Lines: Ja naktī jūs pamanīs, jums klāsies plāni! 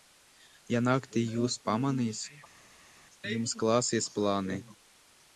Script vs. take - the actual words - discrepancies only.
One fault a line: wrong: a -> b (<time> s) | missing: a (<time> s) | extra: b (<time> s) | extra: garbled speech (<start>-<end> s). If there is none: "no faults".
no faults